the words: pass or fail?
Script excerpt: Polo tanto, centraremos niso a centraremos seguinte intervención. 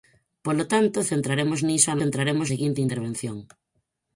pass